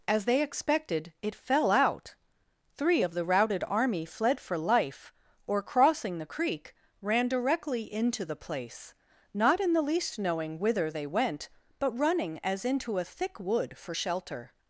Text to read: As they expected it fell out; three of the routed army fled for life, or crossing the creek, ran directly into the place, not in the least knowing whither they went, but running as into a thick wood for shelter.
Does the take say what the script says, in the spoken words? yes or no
yes